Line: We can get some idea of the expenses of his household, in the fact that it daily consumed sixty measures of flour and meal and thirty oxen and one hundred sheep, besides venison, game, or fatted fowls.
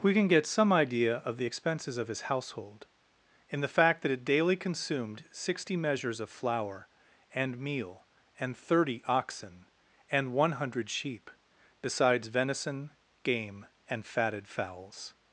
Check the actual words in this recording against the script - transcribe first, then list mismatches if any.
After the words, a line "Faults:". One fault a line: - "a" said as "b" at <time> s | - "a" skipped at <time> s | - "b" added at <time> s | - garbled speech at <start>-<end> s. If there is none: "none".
We can get some idea of the expenses of his household, in the fact that it daily consumed sixty measures of flour and meal and thirty oxen and one hundred sheep, besides venison, game, and fatted fowls.
Faults:
- "or" said as "and" at 13.9 s